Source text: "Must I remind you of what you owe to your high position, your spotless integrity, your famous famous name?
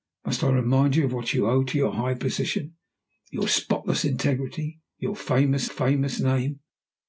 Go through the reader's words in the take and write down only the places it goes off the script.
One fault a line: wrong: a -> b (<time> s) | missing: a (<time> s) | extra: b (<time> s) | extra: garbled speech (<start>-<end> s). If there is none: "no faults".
no faults